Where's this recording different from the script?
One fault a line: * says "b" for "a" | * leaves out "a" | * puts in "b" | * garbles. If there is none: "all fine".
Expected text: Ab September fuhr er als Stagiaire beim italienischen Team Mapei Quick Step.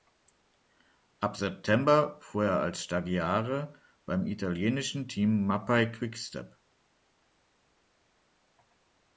all fine